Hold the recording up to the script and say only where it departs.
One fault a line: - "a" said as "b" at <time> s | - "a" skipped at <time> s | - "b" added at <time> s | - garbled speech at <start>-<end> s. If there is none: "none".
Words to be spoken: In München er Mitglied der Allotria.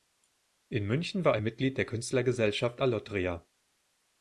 - "war" added at 1.2 s
- "Künstlergesellschaft" added at 1.9 s